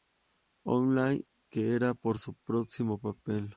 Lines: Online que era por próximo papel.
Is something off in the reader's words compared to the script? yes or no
yes